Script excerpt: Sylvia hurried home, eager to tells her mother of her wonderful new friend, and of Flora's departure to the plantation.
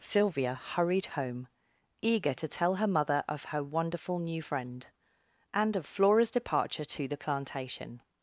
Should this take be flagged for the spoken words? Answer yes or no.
yes